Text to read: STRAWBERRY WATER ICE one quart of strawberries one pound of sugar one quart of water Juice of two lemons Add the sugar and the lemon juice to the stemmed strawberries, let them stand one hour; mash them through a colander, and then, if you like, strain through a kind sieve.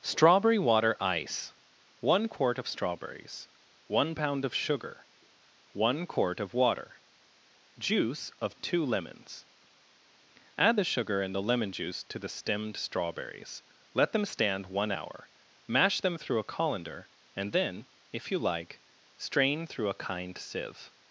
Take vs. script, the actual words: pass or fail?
pass